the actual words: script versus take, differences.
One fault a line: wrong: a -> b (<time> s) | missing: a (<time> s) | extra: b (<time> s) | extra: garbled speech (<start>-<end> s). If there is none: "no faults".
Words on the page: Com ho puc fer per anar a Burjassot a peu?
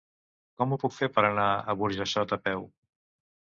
no faults